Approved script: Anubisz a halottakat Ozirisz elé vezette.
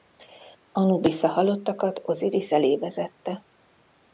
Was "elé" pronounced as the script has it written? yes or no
yes